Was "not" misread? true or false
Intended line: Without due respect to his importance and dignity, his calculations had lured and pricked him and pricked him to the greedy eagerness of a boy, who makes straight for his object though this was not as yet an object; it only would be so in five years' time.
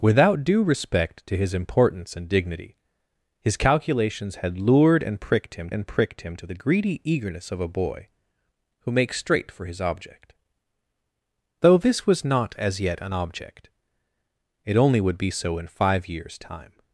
false